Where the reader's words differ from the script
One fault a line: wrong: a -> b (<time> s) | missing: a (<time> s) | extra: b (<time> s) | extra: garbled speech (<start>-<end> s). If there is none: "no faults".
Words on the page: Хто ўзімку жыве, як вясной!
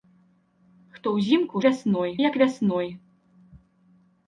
wrong: жыве -> вясной (1.7 s)